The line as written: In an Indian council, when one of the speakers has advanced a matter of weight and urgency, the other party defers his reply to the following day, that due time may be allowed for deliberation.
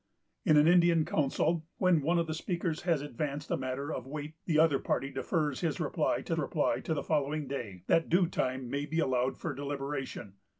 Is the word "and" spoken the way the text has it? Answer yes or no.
no